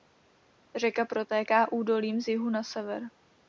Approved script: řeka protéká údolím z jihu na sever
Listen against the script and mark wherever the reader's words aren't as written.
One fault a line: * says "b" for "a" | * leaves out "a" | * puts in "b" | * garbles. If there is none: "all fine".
all fine